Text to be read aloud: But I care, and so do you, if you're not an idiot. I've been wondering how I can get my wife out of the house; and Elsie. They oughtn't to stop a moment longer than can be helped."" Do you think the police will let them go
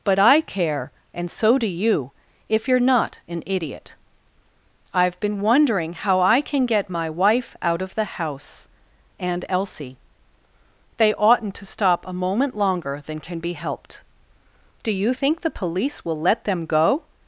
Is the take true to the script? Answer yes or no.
yes